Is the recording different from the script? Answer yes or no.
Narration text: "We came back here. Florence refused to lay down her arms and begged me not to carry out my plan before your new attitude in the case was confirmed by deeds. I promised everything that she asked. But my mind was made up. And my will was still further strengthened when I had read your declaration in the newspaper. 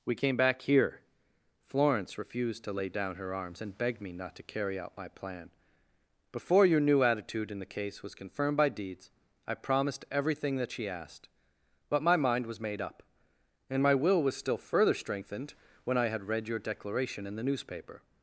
no